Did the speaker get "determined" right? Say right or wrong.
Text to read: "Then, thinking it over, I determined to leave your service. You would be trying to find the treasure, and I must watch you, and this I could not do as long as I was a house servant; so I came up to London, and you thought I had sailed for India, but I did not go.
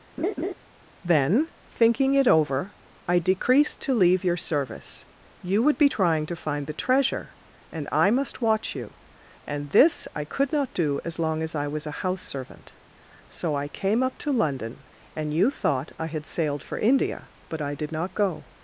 wrong